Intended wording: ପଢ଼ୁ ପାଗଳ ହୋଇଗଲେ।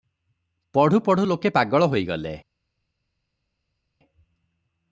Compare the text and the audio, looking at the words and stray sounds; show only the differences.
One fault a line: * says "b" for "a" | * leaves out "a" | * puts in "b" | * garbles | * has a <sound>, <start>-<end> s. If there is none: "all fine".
* puts in "ପଢ଼ୁ ଲୋକେ"